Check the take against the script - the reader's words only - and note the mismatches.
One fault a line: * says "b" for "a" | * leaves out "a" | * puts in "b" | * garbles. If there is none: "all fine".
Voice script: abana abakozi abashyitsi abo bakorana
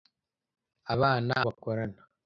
* leaves out "abakozi abashyitsi abo"